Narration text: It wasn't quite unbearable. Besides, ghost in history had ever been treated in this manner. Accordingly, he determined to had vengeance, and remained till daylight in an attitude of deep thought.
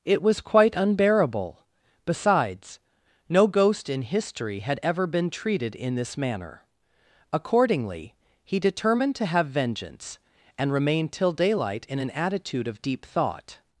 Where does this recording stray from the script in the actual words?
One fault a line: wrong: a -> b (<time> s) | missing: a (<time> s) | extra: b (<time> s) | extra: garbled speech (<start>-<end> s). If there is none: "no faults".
wrong: wasn't -> was (0.2 s)
extra: no (3.3 s)
wrong: had -> have (9.3 s)